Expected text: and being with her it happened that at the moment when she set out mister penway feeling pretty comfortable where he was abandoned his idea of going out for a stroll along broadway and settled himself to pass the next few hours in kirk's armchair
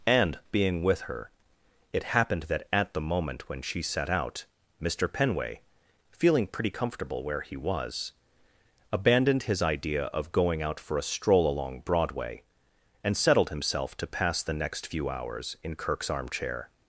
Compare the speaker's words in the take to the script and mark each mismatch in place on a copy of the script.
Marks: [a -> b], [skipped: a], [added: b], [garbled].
and being with her it happened that at the moment when she set out mister penway feeling pretty comfortable where he was abandoned his idea of going out for a stroll along broadway and settled himself to pass the next few hours in kirk's armchair